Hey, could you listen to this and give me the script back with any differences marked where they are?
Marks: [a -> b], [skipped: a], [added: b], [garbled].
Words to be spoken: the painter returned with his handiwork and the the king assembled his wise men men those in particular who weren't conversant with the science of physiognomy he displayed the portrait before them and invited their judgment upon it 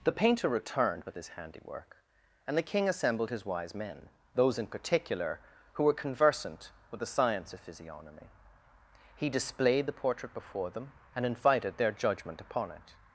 the painter returned with his handiwork and the [skipped: the] king assembled his wise men [skipped: men] those in particular who [weren't -> were] conversant with the science of physiognomy he displayed the portrait before them and invited their judgment upon it